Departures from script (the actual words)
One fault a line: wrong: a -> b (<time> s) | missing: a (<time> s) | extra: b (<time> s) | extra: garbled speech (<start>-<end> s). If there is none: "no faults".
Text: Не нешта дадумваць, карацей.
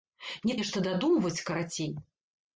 no faults